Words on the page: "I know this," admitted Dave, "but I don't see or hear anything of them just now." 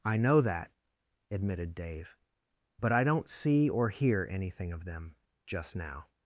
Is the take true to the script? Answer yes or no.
no